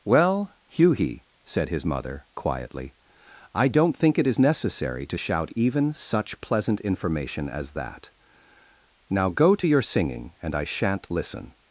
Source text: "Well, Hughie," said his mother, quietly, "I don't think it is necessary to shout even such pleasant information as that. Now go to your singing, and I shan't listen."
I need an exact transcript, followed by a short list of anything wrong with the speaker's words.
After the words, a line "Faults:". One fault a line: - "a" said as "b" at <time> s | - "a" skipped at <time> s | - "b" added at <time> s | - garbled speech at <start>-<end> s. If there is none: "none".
"Well, Hughie," said his mother, quietly, "I don't think it is necessary to shout even such pleasant information as that. Now go to your singing, and I shan't listen."
Faults:
none